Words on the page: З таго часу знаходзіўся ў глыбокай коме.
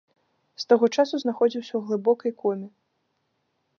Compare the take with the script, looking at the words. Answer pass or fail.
pass